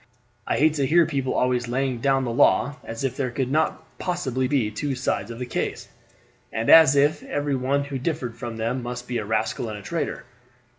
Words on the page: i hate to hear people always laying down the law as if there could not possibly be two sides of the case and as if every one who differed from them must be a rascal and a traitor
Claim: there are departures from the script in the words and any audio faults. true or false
false